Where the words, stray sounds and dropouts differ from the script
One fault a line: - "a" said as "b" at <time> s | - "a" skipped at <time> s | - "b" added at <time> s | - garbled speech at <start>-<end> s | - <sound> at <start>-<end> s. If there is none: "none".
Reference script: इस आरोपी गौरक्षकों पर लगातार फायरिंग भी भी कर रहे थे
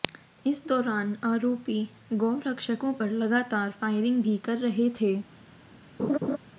- "दौरान" added at 0.7 s
- "भी" skipped at 4.4 s
- laugh at 6.0-6.4 s